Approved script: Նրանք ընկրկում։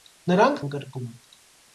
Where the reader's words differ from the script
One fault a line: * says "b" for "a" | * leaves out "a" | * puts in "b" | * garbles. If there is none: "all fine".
all fine